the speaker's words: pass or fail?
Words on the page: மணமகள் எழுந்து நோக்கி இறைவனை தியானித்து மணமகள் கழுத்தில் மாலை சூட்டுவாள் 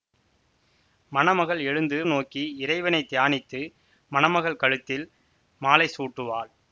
pass